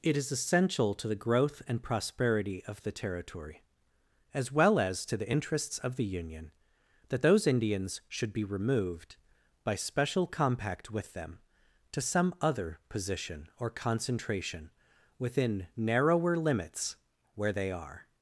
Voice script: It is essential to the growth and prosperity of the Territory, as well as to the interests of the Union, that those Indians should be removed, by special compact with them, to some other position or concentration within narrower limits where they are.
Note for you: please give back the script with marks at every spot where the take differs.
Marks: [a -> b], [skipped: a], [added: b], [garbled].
It is essential to the growth and prosperity of the Territory, as well as to the interests of the Union, that those Indians should be removed, by special compact with them, to some other position or concentration within narrower limits where they are.